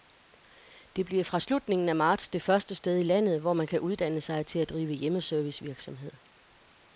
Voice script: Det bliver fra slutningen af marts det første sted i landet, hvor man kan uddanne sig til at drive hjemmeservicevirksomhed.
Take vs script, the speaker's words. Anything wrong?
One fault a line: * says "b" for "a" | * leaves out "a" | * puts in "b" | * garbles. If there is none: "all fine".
all fine